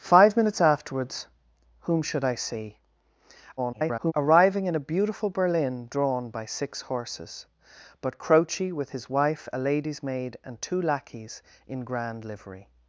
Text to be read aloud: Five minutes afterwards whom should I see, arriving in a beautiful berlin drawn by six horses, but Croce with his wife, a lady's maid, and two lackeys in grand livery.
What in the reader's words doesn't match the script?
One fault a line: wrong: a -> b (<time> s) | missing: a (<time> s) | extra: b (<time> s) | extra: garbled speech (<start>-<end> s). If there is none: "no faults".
extra: garbled speech (3.6-4.1 s)